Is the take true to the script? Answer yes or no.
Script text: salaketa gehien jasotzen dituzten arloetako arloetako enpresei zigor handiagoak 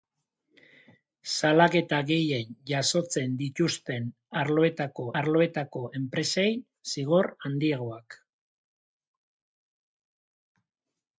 yes